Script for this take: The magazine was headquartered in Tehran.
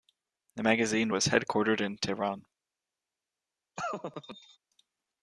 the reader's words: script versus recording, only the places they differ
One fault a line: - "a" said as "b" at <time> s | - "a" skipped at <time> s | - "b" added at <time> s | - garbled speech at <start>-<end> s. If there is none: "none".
none